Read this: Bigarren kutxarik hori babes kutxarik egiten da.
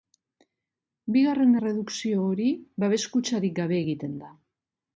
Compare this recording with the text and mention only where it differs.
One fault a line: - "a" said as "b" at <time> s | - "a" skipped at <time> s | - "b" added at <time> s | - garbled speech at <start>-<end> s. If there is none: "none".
- "kutxarik" said as "erredukzio" at 1.6 s
- "gabe" added at 3.6 s